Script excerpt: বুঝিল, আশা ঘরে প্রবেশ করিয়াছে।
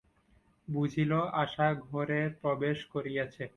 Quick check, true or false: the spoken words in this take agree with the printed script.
true